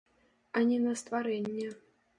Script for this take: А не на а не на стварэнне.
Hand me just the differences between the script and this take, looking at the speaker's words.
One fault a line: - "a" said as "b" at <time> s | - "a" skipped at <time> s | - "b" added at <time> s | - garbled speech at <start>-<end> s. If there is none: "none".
- "а не на" skipped at 0.9 s